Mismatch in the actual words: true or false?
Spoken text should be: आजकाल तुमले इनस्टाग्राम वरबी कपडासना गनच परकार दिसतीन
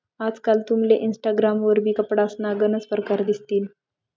false